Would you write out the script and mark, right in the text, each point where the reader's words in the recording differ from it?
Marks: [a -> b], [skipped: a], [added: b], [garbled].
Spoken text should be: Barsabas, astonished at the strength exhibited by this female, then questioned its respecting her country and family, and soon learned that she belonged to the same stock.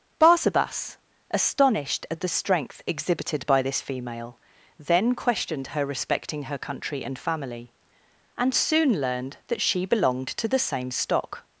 Barsabas, astonished at the strength exhibited by this female, then questioned [its -> her] respecting her country and family, and soon learned that she belonged to the same stock.